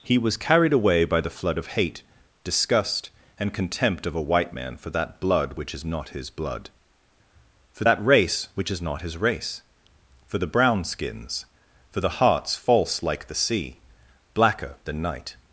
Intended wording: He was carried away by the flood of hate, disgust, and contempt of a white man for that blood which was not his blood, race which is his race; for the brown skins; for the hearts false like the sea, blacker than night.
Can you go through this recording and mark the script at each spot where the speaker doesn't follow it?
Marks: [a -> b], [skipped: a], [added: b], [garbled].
He was carried away by the flood of hate, disgust, and contempt of a white man for that blood which [was -> is] not his blood, [added: for that] race which is [added: not] his race; for the brown skins; for the hearts false like the sea, blacker than night.